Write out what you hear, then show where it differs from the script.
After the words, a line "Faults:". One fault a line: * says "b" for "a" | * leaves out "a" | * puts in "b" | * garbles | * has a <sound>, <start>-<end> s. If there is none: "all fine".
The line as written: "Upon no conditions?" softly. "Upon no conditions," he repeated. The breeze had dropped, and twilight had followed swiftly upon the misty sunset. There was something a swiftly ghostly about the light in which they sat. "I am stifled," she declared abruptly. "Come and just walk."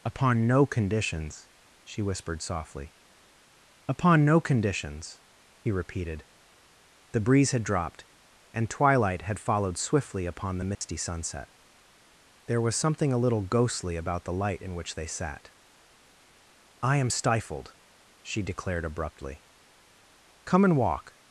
"Upon no conditions?" she whispered softly. "Upon no conditions," he repeated. The breeze had dropped, and twilight had followed swiftly upon the misty sunset. There was something a little ghostly about the light in which they sat. "I am stifled," she declared abruptly. "Come and walk."
Faults:
* puts in "she whispered"
* has a dropout, 10.7-10.8 s
* says "little" for "swiftly"
* leaves out "just"